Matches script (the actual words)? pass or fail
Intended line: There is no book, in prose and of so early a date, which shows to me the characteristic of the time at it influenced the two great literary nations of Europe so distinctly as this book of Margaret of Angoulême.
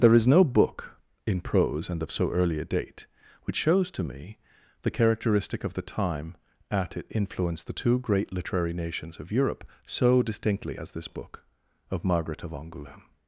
pass